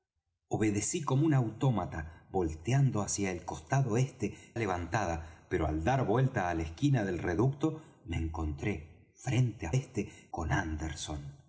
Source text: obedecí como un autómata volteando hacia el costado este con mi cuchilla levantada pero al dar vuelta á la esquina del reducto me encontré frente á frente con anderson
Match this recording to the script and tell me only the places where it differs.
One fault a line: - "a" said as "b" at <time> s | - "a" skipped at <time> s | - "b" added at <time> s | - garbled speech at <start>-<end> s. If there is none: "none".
- "con mi cuchilla" skipped at 4.5 s
- "frente" said as "este" at 9.7 s